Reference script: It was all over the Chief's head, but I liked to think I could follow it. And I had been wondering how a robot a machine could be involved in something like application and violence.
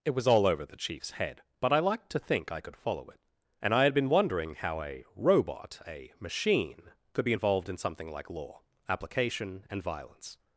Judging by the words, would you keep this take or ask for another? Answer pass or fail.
fail